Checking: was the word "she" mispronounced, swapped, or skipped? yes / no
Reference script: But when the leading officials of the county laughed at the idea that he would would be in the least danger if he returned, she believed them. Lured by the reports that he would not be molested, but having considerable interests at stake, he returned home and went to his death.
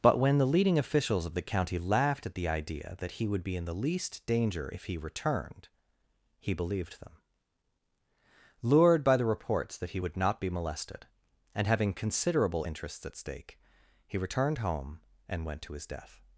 yes